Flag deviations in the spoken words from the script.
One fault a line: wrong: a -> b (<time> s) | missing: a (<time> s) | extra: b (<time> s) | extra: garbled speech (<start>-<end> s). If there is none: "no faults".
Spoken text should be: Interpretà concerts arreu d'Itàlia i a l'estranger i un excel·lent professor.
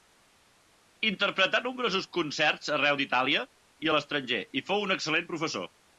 extra: nombrosos (1.6 s)
extra: fou (4.7 s)